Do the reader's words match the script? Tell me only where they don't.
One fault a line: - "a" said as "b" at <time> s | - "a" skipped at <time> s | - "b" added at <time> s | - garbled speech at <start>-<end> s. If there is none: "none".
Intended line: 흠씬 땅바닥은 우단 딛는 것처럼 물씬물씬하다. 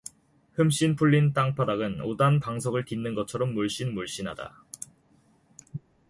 - "풀린" added at 0.9 s
- "방석을" added at 2.4 s